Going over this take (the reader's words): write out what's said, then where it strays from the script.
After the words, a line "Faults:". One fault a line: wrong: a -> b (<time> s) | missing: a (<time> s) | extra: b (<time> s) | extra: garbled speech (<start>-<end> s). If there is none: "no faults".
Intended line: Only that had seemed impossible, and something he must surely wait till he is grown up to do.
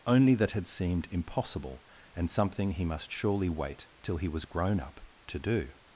Only that had seemed impossible, and something he must surely wait till he was grown up to do.
Faults:
wrong: is -> was (4.3 s)